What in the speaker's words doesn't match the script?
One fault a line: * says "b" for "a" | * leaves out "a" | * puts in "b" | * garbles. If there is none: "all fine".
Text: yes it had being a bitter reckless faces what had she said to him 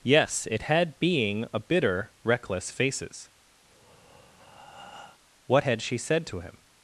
all fine